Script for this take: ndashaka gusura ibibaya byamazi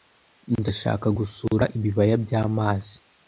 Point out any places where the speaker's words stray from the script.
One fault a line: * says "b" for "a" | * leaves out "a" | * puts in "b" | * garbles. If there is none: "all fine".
all fine